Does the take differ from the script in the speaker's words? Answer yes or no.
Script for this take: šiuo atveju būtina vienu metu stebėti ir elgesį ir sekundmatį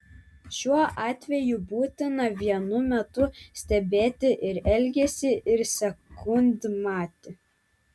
no